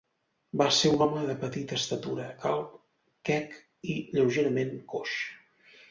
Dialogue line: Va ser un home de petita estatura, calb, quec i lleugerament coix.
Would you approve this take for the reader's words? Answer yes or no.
yes